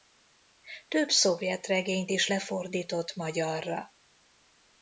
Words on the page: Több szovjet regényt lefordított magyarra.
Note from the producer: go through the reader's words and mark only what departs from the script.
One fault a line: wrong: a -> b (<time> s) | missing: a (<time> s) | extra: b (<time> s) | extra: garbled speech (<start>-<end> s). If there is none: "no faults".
extra: is (2.1 s)